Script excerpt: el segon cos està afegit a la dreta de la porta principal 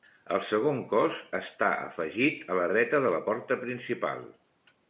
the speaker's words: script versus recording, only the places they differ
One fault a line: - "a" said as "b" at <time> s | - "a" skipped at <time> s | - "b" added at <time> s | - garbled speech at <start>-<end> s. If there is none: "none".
none